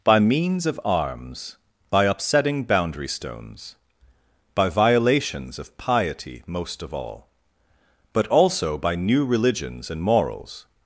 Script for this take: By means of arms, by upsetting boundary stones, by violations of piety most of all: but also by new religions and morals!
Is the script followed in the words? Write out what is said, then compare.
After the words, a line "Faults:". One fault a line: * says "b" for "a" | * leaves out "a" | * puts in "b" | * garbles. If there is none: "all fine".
By means of arms, by upsetting boundary stones, by violations of piety most of all: but also by new religions and morals!
Faults:
all fine